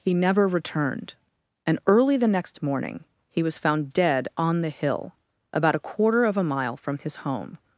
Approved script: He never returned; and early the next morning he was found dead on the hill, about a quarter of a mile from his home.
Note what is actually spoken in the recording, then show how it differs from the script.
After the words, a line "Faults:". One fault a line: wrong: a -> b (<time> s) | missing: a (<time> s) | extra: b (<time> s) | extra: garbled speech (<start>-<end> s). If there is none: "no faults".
He never returned; and early the next morning he was found dead on the hill, about a quarter of a mile from his home.
Faults:
no faults